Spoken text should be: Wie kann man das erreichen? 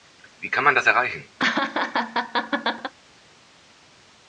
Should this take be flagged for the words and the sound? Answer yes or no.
yes